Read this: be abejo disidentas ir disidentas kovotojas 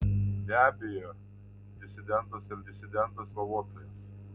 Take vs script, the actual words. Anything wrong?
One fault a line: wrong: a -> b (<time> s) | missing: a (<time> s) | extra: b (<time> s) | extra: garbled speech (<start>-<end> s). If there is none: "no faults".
no faults